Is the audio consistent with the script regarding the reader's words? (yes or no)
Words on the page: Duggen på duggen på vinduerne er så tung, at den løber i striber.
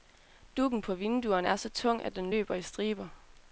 no